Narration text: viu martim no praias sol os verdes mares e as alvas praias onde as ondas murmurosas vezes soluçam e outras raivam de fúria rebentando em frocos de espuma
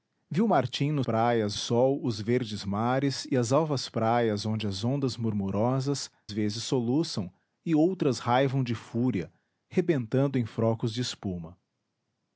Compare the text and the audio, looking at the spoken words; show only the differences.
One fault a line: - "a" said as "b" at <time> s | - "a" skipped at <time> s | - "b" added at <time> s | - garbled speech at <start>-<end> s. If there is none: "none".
none